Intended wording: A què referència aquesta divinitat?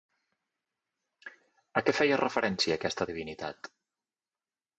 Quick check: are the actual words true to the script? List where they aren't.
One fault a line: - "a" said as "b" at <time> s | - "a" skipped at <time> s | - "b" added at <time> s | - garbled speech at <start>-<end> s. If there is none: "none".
- "feia" added at 2.0 s